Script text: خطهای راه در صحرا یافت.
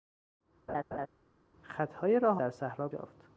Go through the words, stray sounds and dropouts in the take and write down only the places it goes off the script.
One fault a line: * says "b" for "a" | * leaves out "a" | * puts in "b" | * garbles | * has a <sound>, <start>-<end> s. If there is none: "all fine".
* has a laugh, 0.7-1.1 s